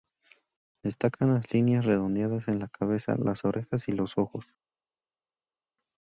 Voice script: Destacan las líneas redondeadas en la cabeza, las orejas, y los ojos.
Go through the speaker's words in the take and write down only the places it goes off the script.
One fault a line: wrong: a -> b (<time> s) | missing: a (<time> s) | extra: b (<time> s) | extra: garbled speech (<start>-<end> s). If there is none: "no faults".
no faults